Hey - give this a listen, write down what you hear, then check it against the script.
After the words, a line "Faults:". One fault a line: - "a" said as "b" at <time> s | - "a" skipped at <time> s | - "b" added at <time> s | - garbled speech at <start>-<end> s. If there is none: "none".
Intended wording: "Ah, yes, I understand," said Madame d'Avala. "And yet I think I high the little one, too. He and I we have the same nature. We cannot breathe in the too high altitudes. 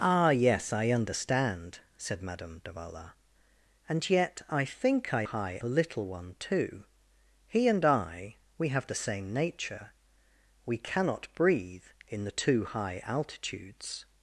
"Ah, yes, I understand," said Madame d'Avala. "And yet I think I high the little one, too. He and I we have the same nature. We cannot breathe in the too high altitudes.
Faults:
none